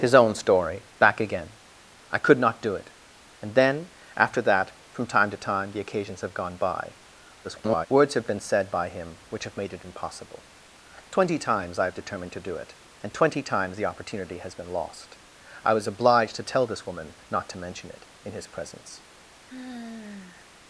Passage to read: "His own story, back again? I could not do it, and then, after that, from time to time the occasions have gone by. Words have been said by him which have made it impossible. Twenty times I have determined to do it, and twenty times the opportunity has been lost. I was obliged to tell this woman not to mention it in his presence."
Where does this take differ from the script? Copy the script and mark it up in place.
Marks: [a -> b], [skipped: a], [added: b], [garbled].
"His own story, back again? I could not do it, and then, after that, from time to time the occasions have gone by. [garbled] Words have been said by him which have made it impossible. Twenty times I have determined to do it, and twenty times the opportunity has been lost. I was obliged to tell this woman not to mention it in his presence."